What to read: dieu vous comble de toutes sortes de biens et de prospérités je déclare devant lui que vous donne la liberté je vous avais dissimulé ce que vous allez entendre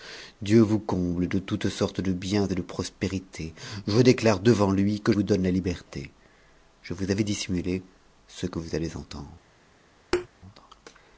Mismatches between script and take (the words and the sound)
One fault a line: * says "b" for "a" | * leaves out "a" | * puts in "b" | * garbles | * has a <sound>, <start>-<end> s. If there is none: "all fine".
* has a thud, 10.1-10.3 s